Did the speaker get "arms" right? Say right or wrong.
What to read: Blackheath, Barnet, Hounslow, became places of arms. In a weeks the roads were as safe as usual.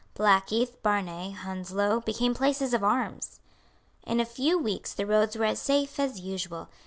right